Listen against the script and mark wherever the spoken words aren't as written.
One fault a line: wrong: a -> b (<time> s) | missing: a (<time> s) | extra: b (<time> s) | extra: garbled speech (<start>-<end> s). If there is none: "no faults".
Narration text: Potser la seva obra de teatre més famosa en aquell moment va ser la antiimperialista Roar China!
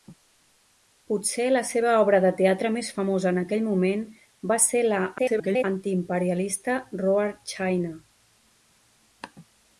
extra: garbled speech (5.2-5.6 s)